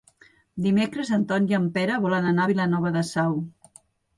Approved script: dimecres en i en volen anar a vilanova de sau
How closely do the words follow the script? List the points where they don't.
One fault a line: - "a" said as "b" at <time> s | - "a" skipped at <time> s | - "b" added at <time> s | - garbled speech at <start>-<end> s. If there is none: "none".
- "ton" added at 1.3 s
- "pere" added at 1.8 s